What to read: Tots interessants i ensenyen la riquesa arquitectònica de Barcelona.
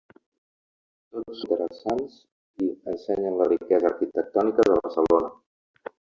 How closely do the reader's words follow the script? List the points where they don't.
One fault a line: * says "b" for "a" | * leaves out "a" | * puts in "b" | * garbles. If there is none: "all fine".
all fine